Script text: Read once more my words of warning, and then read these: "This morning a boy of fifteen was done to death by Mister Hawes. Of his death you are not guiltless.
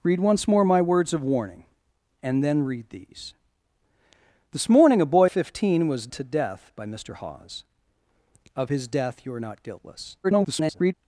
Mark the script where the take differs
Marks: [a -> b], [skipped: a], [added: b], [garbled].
Read once more my words of warning, and then read these: "This morning a boy [skipped: of] fifteen was [skipped: done] to death by Mister Hawes. Of his death you are not guiltless. [garbled]